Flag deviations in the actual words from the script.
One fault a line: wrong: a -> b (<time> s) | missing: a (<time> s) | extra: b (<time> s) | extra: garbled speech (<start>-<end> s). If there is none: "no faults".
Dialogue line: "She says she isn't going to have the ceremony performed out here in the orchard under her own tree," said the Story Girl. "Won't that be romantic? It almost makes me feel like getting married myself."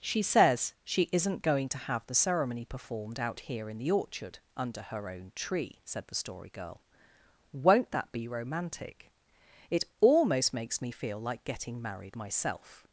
no faults